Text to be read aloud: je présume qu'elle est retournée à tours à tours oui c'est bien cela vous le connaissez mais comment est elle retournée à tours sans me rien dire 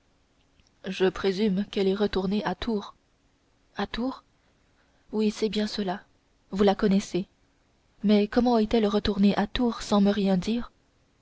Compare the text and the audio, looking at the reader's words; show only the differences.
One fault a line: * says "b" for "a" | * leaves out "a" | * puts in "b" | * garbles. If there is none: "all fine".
* says "la" for "le"